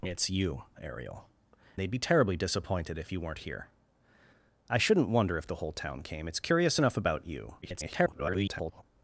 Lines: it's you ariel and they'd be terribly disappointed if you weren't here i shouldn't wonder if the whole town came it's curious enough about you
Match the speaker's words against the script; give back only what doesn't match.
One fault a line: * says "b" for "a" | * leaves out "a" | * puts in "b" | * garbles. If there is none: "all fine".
* leaves out "and"
* garbles